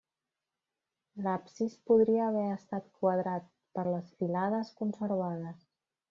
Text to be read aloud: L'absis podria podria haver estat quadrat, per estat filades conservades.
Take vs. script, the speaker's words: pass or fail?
fail